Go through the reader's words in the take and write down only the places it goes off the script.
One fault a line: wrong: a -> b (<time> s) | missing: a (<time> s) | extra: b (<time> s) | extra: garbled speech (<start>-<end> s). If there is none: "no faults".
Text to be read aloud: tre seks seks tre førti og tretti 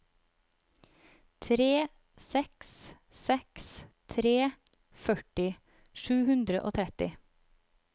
extra: sju hundre (6.0 s)